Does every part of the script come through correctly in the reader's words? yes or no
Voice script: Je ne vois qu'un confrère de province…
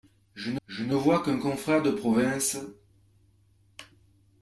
no